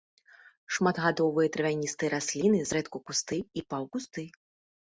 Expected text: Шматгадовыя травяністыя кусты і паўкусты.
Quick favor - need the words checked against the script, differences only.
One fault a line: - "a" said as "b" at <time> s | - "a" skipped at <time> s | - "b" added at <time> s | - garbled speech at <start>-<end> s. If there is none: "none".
- "расліны зрэдку" added at 2.1 s